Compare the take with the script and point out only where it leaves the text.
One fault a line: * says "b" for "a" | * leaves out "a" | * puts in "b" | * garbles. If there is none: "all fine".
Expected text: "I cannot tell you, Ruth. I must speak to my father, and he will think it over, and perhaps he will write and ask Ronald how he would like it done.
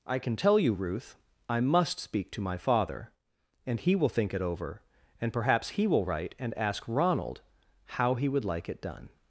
* says "can" for "cannot"